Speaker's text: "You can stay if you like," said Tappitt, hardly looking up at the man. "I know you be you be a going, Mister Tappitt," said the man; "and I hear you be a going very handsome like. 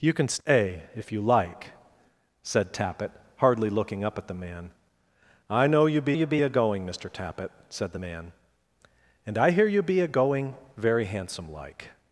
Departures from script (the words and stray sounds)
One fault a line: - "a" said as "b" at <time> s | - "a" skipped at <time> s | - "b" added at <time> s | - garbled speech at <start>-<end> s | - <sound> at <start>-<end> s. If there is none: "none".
none